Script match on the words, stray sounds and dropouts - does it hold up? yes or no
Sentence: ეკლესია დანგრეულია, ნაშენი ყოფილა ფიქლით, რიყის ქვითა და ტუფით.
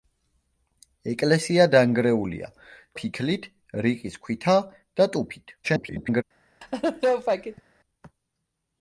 no